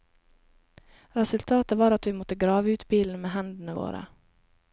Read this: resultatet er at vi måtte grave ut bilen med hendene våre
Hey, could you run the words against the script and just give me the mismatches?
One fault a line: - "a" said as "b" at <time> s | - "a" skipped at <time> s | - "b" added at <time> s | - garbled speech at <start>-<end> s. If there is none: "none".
- "er" said as "var" at 1.8 s